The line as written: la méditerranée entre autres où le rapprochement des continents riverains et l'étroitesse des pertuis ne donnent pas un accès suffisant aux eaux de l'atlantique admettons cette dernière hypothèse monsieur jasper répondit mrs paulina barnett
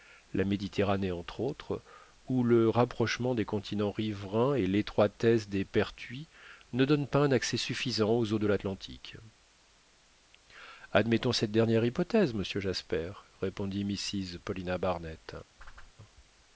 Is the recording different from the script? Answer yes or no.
no